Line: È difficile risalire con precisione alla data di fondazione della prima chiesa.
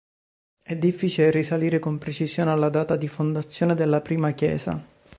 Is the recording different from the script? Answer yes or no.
no